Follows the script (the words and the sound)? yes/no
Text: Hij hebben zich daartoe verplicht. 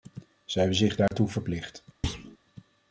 no